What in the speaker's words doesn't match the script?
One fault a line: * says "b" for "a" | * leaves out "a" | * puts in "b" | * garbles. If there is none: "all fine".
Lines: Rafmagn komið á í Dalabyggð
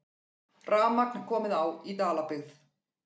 all fine